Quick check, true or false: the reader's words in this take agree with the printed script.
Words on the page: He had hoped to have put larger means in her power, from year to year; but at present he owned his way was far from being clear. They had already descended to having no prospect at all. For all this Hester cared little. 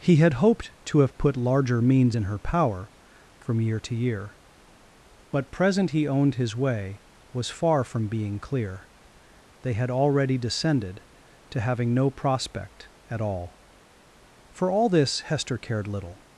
false